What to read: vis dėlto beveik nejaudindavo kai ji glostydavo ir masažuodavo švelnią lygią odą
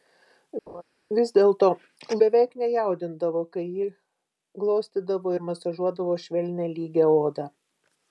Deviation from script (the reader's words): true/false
false